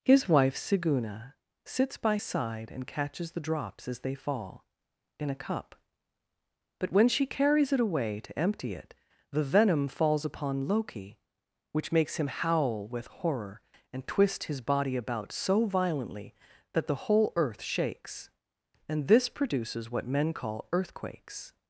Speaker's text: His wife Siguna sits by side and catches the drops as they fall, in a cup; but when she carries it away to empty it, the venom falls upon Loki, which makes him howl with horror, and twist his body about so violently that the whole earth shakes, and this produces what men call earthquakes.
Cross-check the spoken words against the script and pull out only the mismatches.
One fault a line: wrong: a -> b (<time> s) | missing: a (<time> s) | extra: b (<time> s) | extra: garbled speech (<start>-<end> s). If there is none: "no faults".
no faults